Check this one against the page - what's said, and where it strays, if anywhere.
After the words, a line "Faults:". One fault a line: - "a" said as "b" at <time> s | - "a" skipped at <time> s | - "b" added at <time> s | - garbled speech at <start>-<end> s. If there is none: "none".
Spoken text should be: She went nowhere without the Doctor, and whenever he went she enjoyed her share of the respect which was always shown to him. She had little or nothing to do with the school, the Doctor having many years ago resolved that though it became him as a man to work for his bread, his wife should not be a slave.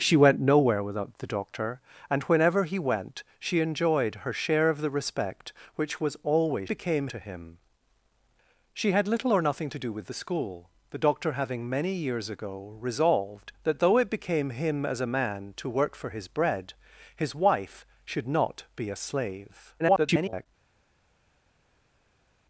She went nowhere without the Doctor, and whenever he went she enjoyed her share of the respect which was always became to him. She had little or nothing to do with the school, the Doctor having many years ago resolved that though it became him as a man to work for his bread, his wife should not be a slave. [garbled]
Faults:
- "shown" said as "became" at 6.7 s
- garbled speech at 19.8-20.5 s